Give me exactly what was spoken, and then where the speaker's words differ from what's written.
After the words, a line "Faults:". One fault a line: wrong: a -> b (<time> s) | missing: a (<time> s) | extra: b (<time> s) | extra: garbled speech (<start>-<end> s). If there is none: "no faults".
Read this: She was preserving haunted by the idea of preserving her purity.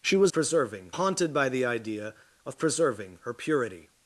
She was preserving haunted by the idea of preserving her purity.
Faults:
no faults